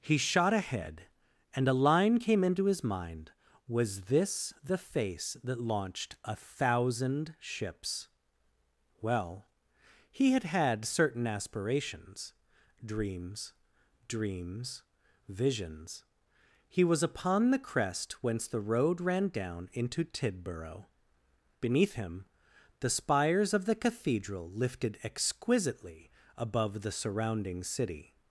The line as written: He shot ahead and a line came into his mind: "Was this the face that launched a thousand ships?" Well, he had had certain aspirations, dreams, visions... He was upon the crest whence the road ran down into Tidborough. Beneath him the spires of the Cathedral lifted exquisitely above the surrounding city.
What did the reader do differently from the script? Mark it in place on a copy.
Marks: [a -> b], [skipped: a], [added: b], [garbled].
He shot ahead and a line came into his mind: "Was this the face that launched a thousand ships?" Well, he had had certain aspirations, dreams, [added: dreams] visions... He was upon the crest whence the road ran down into Tidborough. Beneath him the spires of the Cathedral lifted exquisitely above the surrounding city.